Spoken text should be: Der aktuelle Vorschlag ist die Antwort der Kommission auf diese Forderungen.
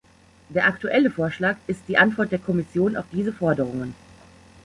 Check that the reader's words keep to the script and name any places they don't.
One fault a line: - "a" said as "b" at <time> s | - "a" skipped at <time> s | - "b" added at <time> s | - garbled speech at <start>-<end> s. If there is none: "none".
none